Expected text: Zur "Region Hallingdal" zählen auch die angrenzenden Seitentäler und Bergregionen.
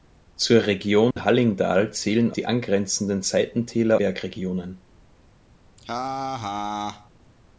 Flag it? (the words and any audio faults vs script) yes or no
yes